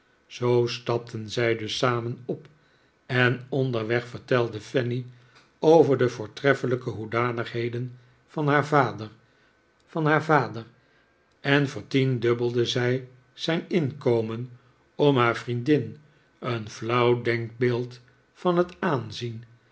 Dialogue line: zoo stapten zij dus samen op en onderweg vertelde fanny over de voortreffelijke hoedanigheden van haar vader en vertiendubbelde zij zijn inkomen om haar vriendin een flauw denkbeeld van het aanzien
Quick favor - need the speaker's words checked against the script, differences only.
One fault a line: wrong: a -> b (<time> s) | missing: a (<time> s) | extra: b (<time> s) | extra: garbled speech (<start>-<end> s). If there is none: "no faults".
extra: van haar vader (9.9 s)